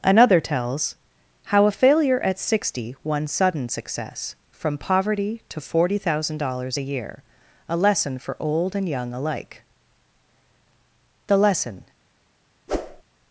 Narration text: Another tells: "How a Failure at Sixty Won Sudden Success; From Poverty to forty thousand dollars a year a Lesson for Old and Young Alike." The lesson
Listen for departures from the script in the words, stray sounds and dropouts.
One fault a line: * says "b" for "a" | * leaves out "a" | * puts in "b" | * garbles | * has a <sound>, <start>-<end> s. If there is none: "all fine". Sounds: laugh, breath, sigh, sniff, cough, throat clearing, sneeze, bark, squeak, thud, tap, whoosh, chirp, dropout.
* has a whoosh, 12.7-13.0 s